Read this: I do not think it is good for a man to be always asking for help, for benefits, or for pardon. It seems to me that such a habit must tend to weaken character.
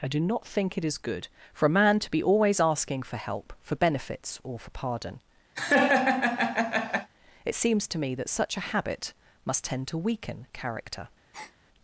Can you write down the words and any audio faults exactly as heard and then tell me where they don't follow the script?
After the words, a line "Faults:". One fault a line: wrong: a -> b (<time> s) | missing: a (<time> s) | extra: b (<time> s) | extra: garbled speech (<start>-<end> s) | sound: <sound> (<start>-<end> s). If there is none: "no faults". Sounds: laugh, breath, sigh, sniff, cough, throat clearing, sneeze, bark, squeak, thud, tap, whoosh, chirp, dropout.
I do not think it is good for a man to be always asking for help, for benefits, or for pardon. It seems to me that such a habit must tend to weaken character.
Faults:
sound: laugh (5.5-7.1 s)
sound: breath (11.3-11.6 s)